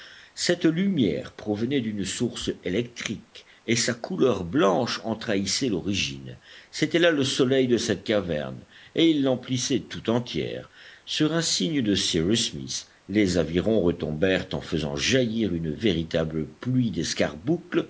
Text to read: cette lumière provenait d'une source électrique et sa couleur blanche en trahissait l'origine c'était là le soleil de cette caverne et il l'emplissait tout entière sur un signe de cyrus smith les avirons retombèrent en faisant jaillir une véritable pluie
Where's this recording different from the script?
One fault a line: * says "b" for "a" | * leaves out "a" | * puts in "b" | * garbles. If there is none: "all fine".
all fine